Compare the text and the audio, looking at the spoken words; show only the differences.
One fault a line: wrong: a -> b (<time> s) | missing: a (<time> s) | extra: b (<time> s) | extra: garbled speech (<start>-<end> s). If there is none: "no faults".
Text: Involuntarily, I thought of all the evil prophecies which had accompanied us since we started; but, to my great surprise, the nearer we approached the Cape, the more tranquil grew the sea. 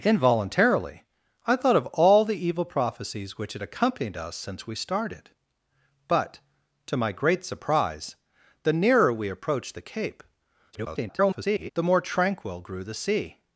extra: garbled speech (10.7-11.7 s)